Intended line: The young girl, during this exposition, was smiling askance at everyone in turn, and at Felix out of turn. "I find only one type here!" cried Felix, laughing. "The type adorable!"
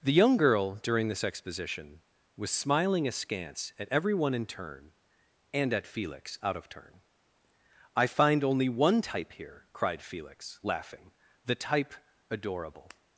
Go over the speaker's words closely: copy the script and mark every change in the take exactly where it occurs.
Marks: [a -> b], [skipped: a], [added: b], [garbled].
The young girl, during this exposition, was smiling askance at everyone in turn, and at Felix out of turn. "I find only one type here!" cried Felix, laughing. "The type adorable!"